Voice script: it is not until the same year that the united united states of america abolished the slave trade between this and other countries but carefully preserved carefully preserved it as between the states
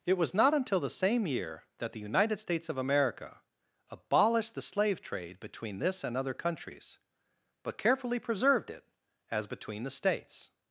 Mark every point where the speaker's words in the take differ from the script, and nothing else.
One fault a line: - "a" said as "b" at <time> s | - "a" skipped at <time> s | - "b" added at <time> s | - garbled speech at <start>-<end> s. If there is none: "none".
- "is" said as "was" at 0.2 s
- "united" skipped at 2.4 s
- "carefully preserved" skipped at 8.7 s